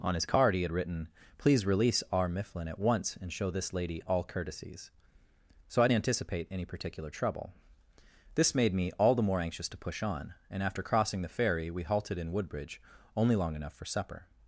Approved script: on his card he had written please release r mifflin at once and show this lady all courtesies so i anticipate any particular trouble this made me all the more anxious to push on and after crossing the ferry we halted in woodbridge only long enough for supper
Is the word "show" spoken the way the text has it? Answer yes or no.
yes